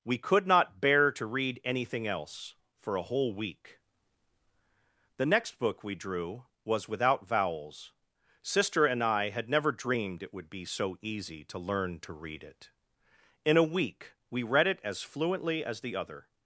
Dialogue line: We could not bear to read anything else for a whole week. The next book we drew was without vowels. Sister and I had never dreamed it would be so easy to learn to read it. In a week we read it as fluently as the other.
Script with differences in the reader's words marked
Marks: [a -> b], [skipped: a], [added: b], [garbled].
We could not bear to read anything else for a whole week. The next book we drew was without vowels. Sister and I had never dreamed it would be so easy to learn to read it. In a week we read it as fluently as the other.